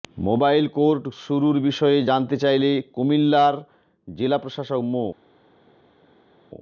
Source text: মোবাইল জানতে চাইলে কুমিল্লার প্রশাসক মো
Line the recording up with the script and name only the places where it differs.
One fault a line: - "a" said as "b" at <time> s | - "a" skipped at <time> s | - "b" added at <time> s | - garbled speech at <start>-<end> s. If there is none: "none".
- "কোর্ট শুরুর বিষয়ে" added at 0.8 s
- "জেলা" added at 4.1 s